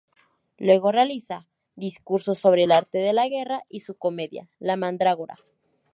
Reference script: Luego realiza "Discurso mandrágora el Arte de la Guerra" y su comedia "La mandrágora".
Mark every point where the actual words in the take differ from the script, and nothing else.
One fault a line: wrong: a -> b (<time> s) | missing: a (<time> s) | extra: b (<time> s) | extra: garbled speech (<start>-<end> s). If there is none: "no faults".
wrong: mandrágora -> sobre (2.3 s)